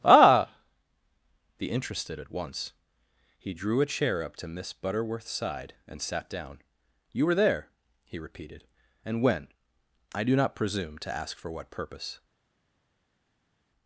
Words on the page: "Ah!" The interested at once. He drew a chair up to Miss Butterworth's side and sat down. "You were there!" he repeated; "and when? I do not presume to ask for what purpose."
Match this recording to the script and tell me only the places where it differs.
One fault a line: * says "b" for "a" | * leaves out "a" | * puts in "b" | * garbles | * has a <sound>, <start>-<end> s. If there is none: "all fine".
all fine